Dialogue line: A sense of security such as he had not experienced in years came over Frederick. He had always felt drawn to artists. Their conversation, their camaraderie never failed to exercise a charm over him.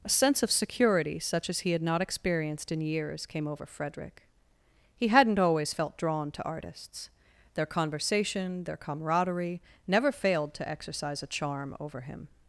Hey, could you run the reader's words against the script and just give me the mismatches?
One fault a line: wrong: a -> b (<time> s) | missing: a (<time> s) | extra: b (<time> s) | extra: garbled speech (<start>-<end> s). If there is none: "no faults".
wrong: had -> hadn't (5.1 s)